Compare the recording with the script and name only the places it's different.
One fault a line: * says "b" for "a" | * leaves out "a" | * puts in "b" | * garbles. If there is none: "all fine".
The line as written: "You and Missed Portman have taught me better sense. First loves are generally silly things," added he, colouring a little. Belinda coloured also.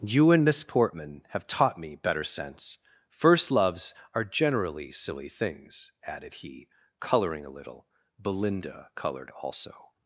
* says "Miss" for "Missed"